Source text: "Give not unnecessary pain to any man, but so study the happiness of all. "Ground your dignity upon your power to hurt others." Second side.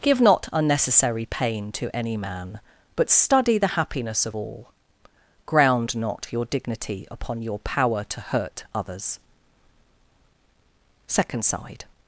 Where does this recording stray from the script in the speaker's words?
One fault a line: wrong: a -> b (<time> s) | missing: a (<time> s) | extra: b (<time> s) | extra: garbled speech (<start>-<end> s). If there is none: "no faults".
missing: so (3.1 s)
extra: not (6.0 s)